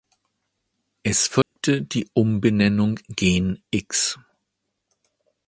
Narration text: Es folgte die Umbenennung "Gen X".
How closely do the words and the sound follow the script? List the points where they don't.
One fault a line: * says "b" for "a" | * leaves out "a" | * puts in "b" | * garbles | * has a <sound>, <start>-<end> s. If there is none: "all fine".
* has a dropout, 1.4-1.6 s